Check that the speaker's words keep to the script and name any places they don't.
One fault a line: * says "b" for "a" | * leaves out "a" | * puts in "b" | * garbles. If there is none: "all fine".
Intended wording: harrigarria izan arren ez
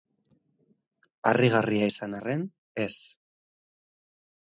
all fine